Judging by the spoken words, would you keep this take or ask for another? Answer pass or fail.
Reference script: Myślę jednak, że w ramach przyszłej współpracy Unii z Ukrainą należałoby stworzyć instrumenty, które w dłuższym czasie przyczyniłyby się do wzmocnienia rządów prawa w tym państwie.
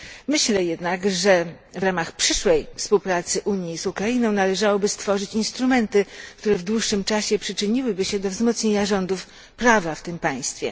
pass